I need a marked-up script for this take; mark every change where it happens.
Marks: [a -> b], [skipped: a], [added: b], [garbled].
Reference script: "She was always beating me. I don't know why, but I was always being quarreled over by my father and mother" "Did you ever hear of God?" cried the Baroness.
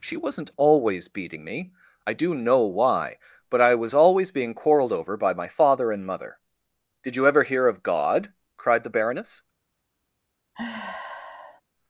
"She [was -> wasn't] always beating me. I [don't -> do] know why, but I was always being quarreled over by my father and mother" "Did you ever hear of God?" cried the Baroness.